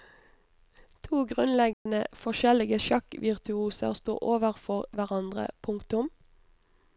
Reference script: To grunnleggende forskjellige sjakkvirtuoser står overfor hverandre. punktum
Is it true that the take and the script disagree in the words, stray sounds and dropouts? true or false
true